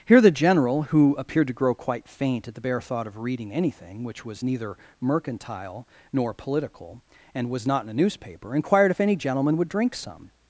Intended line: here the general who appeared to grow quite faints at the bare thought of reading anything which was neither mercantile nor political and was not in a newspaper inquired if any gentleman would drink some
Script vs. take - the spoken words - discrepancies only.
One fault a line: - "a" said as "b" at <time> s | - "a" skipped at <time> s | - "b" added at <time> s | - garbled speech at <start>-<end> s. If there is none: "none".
- "faints" said as "faint" at 2.1 s